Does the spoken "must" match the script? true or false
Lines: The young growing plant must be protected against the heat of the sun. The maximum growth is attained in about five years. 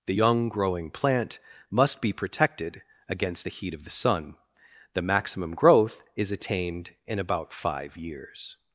true